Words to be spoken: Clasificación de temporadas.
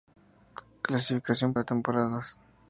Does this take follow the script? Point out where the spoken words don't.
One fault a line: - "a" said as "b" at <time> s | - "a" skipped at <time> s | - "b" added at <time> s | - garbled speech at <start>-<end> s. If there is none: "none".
none